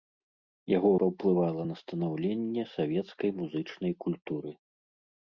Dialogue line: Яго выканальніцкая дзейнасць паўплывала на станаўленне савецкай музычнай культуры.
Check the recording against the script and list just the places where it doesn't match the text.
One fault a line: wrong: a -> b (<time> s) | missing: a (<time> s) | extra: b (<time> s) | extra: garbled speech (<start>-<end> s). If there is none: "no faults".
missing: выканальніцкая дзейнасць (0.9 s)